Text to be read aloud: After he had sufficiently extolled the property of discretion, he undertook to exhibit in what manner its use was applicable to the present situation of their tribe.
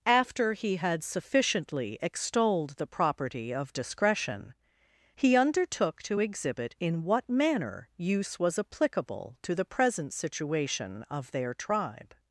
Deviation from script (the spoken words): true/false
true